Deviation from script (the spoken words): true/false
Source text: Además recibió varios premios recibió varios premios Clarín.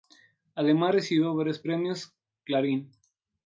true